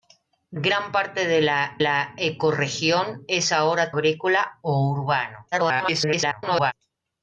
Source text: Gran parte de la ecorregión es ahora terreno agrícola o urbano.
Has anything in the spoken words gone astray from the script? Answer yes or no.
yes